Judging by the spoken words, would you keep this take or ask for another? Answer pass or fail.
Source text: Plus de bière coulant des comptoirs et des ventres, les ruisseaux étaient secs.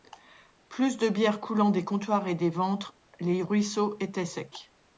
pass